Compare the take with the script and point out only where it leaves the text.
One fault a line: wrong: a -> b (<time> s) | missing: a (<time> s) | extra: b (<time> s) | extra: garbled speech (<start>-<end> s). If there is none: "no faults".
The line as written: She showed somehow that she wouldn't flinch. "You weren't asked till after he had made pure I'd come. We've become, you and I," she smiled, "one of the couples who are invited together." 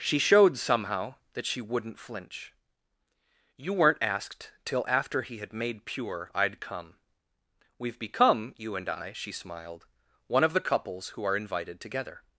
no faults